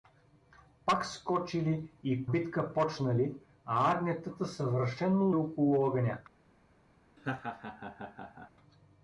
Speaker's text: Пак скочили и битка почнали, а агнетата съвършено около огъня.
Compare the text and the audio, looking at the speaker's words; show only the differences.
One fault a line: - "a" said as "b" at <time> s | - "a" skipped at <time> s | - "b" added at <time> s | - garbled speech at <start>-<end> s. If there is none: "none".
none